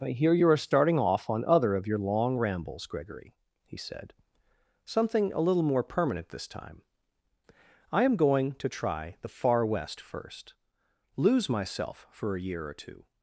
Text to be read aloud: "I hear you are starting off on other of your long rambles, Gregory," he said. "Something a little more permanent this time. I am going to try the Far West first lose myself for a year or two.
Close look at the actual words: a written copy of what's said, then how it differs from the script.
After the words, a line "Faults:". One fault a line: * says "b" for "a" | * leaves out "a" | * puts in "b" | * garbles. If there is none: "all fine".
"I hear you are starting off on other of your long rambles, Gregory," he said. "Something a little more permanent this time. I am going to try the Far West first lose myself for a year or two.
Faults:
all fine